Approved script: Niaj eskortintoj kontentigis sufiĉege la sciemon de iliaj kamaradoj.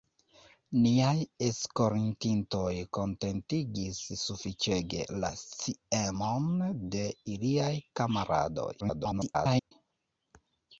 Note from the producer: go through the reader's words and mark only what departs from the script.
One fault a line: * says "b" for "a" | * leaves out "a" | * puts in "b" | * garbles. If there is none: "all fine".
* garbles